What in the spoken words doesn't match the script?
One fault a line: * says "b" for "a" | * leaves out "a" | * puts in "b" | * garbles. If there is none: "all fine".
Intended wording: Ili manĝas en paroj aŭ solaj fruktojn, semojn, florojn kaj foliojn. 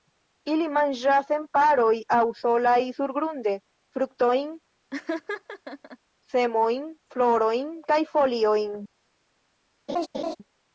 * puts in "surgrunde"